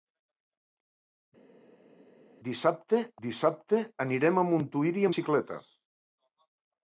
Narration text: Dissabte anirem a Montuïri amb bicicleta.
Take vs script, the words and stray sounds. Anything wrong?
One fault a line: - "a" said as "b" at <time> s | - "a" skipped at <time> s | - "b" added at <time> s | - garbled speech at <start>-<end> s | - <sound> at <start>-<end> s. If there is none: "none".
- "dissabte" added at 3.3 s
- "amb" skipped at 5.1 s